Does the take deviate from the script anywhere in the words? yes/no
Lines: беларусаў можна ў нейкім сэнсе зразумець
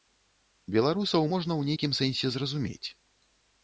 no